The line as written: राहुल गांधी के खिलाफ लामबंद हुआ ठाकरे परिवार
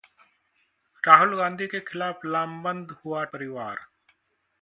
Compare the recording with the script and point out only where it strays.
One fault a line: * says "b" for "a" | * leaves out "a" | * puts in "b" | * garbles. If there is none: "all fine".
* leaves out "ठाकरे"